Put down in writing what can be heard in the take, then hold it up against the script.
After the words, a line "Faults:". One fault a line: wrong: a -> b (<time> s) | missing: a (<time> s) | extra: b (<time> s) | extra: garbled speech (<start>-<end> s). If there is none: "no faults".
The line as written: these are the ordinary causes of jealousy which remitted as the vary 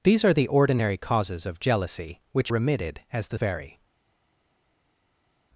these are the ordinary causes of jealousy which remitted as the vary
Faults:
no faults